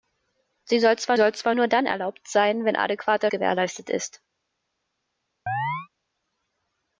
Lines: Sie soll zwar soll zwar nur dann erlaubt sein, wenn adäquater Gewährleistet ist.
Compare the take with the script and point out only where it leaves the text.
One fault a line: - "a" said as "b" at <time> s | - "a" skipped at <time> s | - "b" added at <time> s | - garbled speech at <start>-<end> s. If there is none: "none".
none